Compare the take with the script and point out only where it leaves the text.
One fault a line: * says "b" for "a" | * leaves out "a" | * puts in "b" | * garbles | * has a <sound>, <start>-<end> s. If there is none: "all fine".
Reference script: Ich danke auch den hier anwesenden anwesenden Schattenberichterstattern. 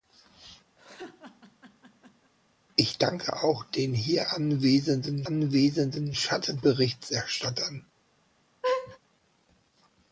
* has a laugh, 0.8-2.3 s
* has a laugh, 8.6-9.0 s